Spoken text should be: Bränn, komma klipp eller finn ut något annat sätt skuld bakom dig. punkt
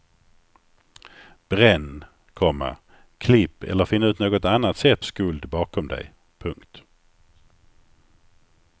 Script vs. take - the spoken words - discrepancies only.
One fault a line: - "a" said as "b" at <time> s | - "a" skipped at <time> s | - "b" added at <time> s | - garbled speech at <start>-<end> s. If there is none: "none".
none